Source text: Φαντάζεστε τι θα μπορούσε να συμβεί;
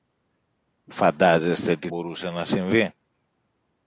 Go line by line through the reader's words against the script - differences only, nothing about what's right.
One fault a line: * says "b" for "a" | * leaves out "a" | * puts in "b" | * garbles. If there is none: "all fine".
* leaves out "θα"